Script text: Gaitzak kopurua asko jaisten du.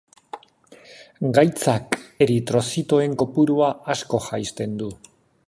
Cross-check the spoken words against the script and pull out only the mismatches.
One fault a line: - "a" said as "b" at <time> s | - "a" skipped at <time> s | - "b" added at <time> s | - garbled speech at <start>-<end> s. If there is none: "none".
- "eritrozitoen" added at 2.3 s